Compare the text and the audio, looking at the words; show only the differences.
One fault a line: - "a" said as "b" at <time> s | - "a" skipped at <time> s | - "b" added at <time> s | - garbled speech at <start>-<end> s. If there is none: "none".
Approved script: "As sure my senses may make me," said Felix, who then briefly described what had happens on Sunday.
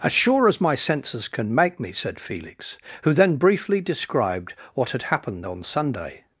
- "as" added at 0.5 s
- "may" said as "can" at 1.3 s
- "happens" said as "happened" at 5.0 s